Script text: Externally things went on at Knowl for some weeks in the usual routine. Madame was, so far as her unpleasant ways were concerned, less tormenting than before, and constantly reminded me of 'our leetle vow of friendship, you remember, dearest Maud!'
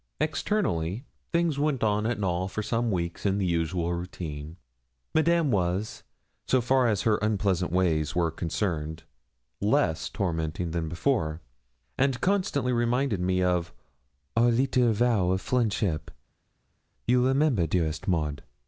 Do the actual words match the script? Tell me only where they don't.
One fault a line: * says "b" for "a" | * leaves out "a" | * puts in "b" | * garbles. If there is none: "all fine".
all fine